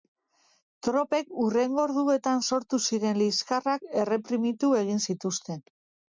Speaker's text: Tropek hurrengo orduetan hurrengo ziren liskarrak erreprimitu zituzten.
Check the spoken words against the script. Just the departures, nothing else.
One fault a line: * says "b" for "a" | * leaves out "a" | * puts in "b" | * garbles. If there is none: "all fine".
* says "sortu" for "hurrengo"
* puts in "egin"